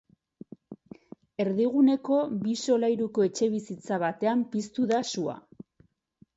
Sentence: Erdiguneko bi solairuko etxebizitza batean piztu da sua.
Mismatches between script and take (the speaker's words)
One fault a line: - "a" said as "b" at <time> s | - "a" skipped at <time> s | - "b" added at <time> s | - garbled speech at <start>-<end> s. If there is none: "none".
none